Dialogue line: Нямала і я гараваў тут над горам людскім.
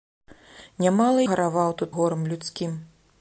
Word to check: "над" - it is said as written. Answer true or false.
false